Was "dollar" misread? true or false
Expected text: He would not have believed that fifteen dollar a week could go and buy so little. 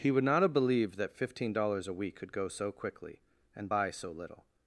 true